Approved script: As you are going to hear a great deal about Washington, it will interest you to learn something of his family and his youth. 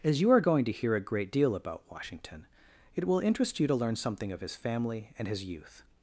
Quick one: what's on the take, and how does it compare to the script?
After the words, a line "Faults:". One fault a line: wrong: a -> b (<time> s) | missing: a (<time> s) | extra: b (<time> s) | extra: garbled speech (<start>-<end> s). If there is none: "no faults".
As you are going to hear a great deal about Washington, it will interest you to learn something of his family and his youth.
Faults:
no faults